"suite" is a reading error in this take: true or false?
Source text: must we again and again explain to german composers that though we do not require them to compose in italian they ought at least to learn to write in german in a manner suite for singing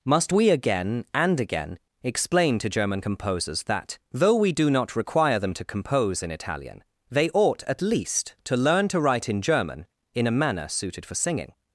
true